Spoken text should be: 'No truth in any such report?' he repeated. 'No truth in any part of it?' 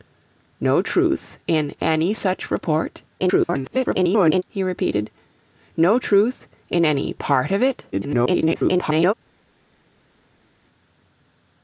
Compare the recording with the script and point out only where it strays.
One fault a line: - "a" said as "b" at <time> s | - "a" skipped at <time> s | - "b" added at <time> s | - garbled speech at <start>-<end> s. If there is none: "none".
- garbled speech at 3.2-4.4 s
- garbled speech at 7.9-9.1 s